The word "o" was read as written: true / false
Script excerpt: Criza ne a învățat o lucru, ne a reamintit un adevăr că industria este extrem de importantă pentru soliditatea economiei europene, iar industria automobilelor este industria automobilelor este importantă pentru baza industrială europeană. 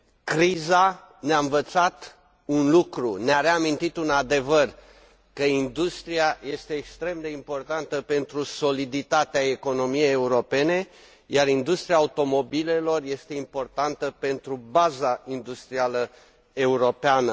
false